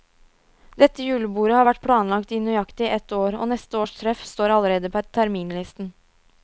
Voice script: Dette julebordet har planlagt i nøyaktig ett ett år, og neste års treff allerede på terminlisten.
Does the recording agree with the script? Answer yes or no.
no